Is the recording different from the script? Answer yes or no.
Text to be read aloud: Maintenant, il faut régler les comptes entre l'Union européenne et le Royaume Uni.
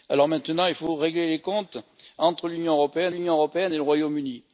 yes